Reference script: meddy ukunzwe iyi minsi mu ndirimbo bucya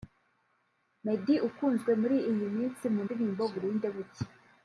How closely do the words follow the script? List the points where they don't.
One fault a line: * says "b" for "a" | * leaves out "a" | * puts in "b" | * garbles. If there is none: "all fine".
* puts in "muri"
* puts in "burinde"